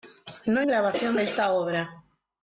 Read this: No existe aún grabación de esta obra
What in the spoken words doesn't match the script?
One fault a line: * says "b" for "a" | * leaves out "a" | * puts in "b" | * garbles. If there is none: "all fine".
* leaves out "existe aún"